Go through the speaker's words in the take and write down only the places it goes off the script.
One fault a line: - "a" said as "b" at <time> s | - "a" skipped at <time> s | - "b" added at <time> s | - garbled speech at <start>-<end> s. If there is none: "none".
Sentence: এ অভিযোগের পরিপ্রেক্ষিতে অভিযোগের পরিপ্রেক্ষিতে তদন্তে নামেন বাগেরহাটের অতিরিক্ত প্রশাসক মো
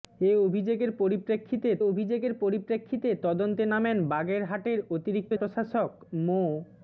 none